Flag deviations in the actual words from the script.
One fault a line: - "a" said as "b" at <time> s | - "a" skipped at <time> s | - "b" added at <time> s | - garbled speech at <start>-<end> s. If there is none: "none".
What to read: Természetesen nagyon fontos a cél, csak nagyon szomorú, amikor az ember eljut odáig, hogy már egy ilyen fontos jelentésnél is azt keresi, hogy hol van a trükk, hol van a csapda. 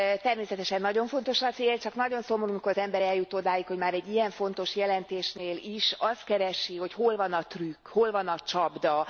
none